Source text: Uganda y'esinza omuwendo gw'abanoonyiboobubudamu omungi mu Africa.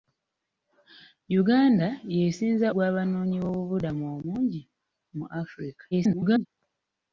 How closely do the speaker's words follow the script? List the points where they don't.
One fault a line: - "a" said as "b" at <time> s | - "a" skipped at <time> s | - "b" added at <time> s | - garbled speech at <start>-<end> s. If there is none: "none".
- "omuwendo" skipped at 2.7 s
- garbled speech at 5.9-6.5 s